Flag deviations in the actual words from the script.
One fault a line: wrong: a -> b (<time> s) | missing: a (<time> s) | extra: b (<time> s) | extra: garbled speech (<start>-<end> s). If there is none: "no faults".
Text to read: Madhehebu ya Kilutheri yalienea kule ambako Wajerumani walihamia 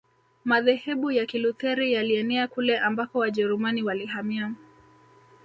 no faults